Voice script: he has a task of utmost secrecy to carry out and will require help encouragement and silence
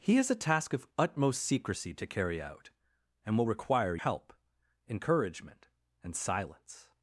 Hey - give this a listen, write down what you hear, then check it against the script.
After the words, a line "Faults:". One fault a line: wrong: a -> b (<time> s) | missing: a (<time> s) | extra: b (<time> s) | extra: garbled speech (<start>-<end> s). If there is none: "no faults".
he has a task of utmost secrecy to carry out and will require help encouragement and silence
Faults:
no faults